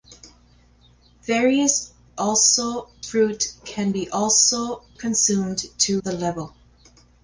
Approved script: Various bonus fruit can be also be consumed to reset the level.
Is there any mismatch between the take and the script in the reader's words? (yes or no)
yes